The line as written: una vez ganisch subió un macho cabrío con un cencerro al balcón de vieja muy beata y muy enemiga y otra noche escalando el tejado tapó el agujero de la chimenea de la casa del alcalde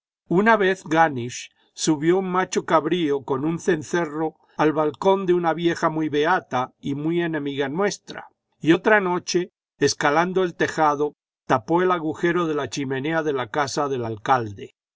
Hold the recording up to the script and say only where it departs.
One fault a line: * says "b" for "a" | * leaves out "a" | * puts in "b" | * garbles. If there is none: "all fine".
* puts in "una"
* puts in "nuestra"